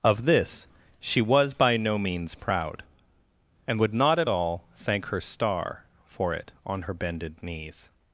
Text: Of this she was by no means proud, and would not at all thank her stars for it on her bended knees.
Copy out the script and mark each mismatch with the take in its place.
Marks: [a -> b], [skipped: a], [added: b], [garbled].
Of this she was by no means proud, and would not at all thank her [stars -> star] for it on her bended knees.